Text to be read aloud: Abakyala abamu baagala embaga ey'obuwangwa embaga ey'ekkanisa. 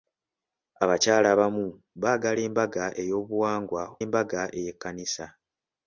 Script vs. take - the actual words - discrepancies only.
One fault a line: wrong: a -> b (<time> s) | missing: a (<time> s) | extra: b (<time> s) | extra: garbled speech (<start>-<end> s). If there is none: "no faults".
no faults